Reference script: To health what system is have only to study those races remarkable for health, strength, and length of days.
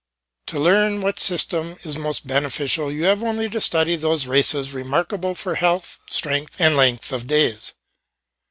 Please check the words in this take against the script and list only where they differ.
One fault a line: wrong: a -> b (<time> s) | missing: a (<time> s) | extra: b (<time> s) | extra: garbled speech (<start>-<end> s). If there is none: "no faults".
wrong: health -> learn (0.6 s)
extra: most beneficial you (1.9 s)